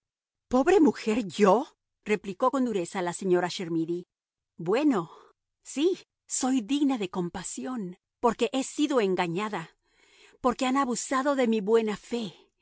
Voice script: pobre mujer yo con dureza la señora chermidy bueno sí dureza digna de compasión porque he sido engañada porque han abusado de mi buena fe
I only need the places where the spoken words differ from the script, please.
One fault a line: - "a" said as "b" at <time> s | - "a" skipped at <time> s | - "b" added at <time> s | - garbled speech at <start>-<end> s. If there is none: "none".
- "replicó" added at 2.0 s
- "dureza" said as "soy" at 6.3 s